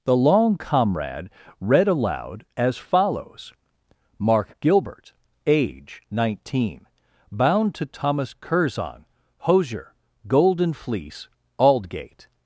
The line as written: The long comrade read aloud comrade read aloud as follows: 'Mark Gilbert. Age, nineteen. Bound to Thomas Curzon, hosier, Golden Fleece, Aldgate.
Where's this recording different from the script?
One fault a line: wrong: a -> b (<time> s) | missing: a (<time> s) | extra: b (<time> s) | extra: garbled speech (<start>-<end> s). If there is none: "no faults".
missing: comrade read aloud (2.5 s)